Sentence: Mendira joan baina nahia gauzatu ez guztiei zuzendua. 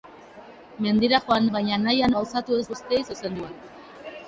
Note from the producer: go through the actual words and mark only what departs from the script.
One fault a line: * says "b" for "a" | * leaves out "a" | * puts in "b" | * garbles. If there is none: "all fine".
all fine